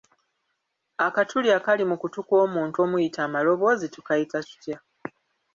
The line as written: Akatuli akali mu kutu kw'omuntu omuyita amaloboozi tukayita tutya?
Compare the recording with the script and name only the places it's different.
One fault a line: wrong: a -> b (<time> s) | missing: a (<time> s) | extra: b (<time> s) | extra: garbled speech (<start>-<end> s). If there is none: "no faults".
no faults